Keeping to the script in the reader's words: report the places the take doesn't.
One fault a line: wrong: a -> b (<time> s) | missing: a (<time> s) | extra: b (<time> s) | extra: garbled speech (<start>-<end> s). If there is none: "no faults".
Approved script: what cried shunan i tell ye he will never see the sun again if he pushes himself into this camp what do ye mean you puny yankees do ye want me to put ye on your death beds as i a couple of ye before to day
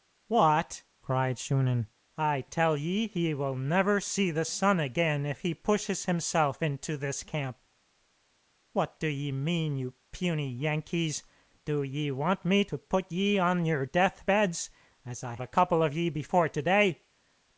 no faults